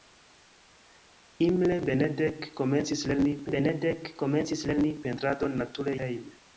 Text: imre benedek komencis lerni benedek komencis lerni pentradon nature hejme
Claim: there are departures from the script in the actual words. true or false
false